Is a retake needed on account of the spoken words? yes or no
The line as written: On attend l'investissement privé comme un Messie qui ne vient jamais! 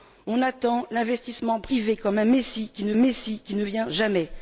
yes